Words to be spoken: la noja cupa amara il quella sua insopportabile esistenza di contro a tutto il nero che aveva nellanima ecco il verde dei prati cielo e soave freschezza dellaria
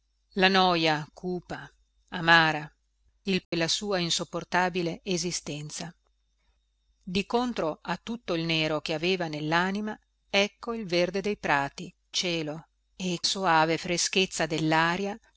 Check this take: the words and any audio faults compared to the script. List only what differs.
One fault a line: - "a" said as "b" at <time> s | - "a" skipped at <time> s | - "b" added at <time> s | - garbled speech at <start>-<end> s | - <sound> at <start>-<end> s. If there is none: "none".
- dropout at 3.4-3.5 s